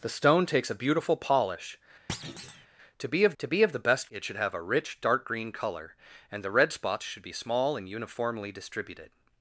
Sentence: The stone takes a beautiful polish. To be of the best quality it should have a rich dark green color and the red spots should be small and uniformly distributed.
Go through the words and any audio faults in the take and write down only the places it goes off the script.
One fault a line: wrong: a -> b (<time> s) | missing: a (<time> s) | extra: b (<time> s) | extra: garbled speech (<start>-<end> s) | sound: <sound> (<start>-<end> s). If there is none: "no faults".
sound: thud (2.1-2.7 s)
extra: to be of (3.4 s)
missing: quality (4.1 s)